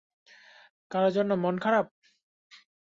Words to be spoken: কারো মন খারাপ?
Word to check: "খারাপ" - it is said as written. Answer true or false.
true